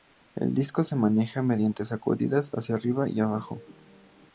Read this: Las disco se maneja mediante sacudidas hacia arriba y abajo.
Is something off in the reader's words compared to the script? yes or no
yes